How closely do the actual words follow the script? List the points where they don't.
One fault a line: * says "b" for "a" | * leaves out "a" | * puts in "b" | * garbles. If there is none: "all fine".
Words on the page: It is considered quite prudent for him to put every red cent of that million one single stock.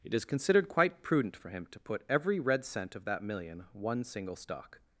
all fine